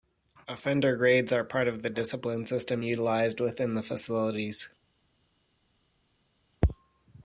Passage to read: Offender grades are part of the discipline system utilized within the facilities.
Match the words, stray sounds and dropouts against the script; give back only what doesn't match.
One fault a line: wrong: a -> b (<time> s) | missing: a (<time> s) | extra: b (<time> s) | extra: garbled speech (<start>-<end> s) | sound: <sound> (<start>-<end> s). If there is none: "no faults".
no faults